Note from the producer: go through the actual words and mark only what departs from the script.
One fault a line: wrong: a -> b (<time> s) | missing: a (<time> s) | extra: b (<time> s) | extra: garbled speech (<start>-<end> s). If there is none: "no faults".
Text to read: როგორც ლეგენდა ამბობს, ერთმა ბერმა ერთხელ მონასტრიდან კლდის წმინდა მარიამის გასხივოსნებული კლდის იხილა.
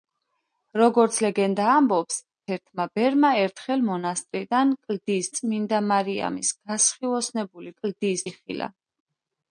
no faults